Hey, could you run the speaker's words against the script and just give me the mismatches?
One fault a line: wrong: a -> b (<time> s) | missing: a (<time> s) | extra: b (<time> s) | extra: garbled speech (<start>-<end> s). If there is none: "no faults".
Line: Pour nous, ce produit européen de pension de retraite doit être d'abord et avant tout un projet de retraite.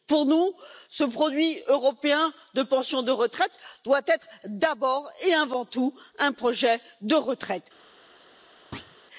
no faults